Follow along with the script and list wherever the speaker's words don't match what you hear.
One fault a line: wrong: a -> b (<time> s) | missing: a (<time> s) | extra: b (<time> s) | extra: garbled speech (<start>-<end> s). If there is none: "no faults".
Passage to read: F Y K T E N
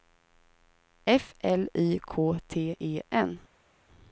extra: L (1.4 s)